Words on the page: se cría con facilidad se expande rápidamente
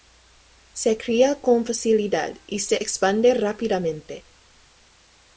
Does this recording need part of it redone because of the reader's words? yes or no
yes